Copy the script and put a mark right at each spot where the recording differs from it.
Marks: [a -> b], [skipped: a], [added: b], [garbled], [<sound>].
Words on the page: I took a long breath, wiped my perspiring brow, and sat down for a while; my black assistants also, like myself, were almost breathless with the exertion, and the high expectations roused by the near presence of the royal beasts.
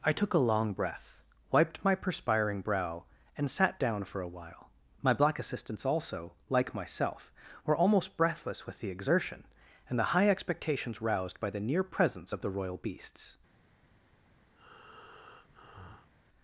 I took a long breath, wiped my perspiring brow, and sat down for a while; my black assistants also, like myself, were almost breathless with the exertion, and the high expectations roused by the near presence of the royal beasts. [breath]